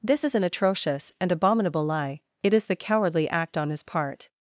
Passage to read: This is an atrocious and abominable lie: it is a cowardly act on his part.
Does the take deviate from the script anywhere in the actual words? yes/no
yes